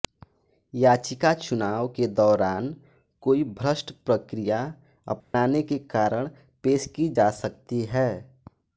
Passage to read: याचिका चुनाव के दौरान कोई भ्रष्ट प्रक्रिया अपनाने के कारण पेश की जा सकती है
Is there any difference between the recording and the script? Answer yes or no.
no